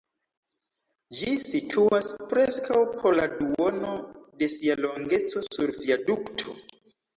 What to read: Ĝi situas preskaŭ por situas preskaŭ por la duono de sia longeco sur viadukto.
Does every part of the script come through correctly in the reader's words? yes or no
no